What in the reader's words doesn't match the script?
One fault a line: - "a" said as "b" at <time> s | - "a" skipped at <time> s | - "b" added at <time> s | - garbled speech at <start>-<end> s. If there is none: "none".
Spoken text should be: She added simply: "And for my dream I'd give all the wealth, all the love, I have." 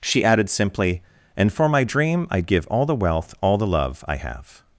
none